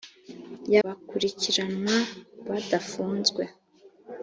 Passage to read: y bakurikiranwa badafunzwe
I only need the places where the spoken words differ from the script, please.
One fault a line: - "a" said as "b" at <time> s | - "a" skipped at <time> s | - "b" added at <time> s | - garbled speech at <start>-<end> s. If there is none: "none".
none